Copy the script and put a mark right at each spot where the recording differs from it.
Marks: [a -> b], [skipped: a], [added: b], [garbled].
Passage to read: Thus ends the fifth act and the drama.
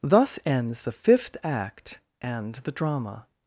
Thus ends the fifth act and the drama.